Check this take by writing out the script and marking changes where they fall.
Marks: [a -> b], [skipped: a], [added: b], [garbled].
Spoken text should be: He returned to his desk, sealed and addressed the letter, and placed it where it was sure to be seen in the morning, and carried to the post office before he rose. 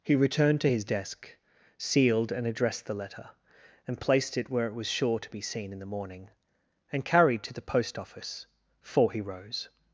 He returned to his desk, sealed and addressed the letter, and placed it where it was sure to be seen in the morning, and carried to the post office [before -> for] he rose.